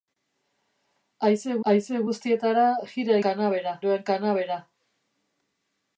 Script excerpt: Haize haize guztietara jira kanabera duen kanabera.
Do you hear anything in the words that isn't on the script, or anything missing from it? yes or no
no